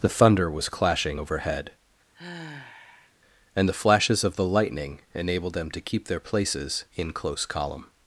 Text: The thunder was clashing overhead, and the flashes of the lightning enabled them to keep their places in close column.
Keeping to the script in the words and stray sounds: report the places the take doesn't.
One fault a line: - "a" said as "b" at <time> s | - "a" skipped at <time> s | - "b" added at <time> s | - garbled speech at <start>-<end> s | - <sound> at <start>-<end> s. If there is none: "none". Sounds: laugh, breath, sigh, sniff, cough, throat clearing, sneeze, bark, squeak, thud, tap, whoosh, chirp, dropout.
- sigh at 2.1-3.1 s